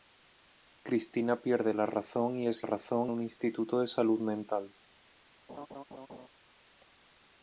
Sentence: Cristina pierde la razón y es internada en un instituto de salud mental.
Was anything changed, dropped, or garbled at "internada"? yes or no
yes